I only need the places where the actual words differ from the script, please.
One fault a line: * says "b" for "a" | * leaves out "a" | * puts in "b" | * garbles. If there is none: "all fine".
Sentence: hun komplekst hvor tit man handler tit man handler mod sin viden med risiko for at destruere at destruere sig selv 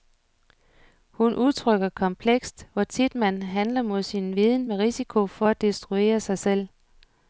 * puts in "udtrykker"
* leaves out "tit man handler"
* leaves out "at destruere"